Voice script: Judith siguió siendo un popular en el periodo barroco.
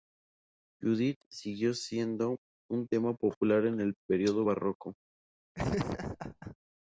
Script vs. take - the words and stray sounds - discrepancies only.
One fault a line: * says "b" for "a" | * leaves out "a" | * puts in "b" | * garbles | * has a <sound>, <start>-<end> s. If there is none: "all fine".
* puts in "tema"
* has a laugh, 5.5-6.6 s